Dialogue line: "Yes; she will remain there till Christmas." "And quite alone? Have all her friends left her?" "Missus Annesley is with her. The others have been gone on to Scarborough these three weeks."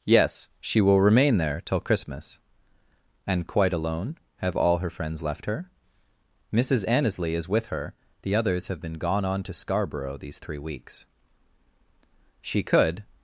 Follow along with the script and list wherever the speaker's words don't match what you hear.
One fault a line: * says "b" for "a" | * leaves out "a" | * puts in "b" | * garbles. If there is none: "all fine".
* puts in "She could"